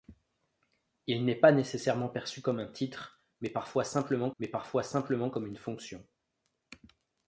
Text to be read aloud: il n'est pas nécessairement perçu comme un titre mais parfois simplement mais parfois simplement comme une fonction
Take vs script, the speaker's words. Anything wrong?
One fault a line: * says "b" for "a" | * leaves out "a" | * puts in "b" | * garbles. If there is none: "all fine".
all fine